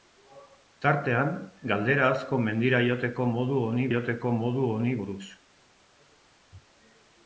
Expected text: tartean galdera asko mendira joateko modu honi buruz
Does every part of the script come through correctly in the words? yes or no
no